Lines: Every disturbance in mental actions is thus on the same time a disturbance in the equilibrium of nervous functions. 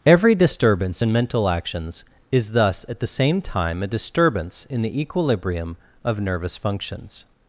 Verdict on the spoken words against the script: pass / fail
fail